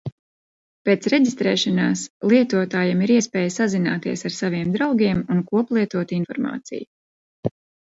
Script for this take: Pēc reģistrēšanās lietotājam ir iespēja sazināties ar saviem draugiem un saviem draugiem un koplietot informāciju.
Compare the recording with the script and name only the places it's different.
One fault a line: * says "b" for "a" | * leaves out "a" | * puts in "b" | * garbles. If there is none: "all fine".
* leaves out "saviem draugiem un"